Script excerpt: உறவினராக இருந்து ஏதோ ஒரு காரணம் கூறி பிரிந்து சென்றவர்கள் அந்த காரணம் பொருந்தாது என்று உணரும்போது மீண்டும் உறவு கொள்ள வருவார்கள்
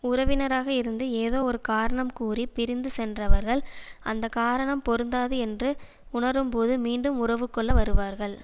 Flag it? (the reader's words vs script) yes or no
no